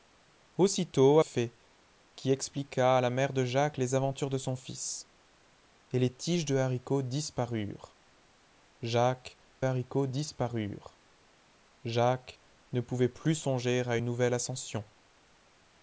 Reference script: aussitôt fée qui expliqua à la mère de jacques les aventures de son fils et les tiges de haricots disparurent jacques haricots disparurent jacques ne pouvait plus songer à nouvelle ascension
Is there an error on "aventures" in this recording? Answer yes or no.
no